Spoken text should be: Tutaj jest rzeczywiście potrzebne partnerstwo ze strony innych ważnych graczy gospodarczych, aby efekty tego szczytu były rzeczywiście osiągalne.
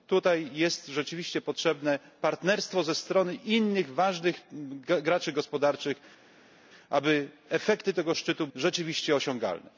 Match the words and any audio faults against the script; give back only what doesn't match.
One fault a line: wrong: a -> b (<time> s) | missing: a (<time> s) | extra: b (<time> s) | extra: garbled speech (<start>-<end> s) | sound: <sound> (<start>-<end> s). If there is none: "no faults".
missing: były (8.5 s)